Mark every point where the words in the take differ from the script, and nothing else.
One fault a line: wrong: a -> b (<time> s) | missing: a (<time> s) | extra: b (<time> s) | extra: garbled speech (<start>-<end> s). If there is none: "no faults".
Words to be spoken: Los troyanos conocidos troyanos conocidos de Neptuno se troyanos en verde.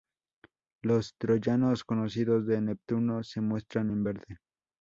missing: troyanos conocidos (2.5 s)
wrong: troyanos -> muestran (3.4 s)